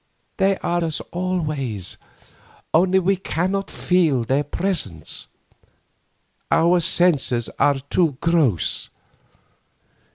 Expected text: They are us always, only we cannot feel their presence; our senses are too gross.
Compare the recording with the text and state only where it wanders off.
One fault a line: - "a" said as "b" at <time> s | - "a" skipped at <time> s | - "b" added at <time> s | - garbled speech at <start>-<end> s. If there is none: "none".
none